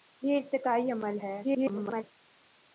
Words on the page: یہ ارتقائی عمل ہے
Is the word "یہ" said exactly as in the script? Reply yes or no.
yes